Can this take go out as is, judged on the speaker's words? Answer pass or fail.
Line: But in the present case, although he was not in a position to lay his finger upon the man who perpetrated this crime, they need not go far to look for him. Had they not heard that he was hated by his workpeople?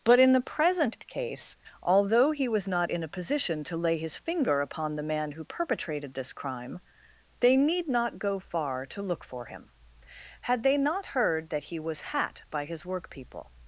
fail